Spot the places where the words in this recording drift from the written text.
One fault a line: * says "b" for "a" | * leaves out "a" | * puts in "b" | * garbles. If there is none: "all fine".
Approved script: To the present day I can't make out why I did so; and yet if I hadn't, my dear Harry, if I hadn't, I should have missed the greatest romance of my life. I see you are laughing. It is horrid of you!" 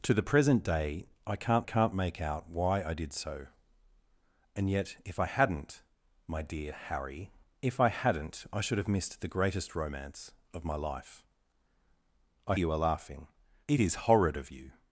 * puts in "can't"
* leaves out "see"